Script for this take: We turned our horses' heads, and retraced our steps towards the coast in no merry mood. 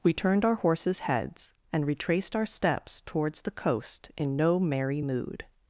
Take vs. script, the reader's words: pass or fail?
pass